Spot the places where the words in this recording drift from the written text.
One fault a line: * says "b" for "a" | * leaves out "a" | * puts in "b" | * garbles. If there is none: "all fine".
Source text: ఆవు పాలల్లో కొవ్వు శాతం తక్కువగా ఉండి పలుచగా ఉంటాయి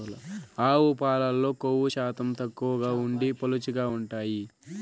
all fine